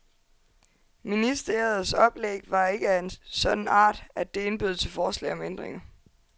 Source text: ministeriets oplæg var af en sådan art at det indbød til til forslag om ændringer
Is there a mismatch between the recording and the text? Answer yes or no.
yes